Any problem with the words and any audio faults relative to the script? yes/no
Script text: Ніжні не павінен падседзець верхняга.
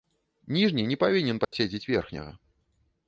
yes